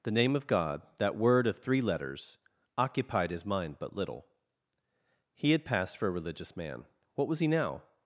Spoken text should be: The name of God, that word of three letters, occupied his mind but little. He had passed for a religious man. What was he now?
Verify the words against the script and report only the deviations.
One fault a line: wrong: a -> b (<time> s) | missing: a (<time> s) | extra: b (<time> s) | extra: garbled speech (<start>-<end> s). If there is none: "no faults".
no faults